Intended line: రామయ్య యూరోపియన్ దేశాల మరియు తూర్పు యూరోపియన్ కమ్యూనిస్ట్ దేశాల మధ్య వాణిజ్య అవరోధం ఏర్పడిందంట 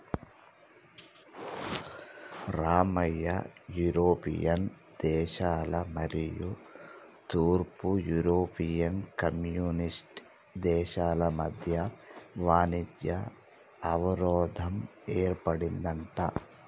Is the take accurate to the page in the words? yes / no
yes